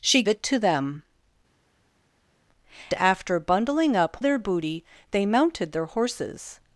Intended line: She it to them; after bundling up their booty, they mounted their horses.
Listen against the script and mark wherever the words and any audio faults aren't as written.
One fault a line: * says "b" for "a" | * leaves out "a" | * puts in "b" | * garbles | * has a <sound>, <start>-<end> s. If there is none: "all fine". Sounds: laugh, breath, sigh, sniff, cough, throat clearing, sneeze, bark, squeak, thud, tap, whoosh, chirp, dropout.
all fine